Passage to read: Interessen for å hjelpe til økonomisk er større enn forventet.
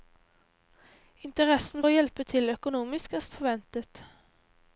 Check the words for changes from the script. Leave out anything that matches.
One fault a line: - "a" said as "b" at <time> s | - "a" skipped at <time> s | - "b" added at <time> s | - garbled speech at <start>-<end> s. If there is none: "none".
- "for" skipped at 1.9 s
- "større" skipped at 3.3 s